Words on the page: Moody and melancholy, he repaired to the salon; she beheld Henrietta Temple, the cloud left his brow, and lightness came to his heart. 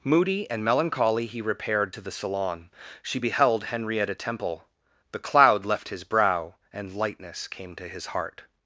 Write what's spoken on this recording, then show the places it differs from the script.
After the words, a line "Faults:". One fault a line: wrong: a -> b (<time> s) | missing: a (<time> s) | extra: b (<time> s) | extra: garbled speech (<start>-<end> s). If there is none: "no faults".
Moody and melancholy, he repaired to the salon; she beheld Henrietta Temple, the cloud left his brow, and lightness came to his heart.
Faults:
no faults